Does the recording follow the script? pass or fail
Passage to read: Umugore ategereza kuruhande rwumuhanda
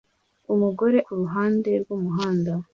fail